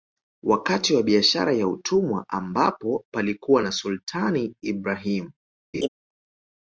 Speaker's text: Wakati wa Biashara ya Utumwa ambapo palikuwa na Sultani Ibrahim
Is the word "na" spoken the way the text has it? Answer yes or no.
yes